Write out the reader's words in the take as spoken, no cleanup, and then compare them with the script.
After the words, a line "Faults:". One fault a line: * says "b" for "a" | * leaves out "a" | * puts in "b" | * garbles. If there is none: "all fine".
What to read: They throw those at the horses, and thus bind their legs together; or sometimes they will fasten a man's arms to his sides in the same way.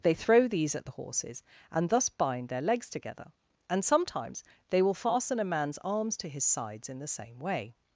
They throw these at the horses, and thus bind their legs together; and sometimes they will fasten a man's arms to his sides in the same way.
Faults:
* says "these" for "those"
* says "and" for "or"